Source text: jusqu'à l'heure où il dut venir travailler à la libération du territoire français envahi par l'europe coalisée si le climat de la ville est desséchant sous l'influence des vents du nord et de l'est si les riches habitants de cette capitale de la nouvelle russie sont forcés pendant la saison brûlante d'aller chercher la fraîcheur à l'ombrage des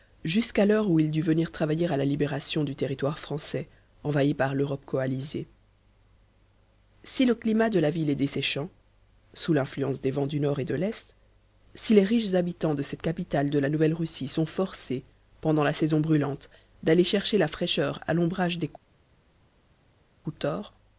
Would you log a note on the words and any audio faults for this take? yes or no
no